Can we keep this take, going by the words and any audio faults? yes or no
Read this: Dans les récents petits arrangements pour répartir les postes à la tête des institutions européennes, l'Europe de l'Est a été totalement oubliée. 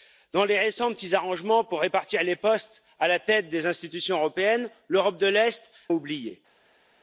no